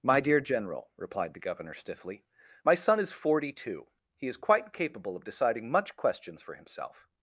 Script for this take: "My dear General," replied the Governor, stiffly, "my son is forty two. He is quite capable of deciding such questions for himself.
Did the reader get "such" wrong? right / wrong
wrong